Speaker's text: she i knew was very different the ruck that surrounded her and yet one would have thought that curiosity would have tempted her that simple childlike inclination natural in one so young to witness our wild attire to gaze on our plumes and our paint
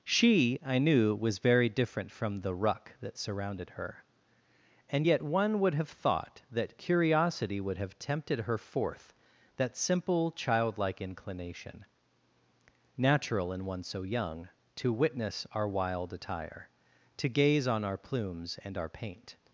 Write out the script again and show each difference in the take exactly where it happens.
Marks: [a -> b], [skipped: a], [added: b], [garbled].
she i knew was very different [added: from] the ruck that surrounded her and yet one would have thought that curiosity would have tempted her [added: forth] that simple childlike inclination natural in one so young to witness our wild attire to gaze on our plumes and our paint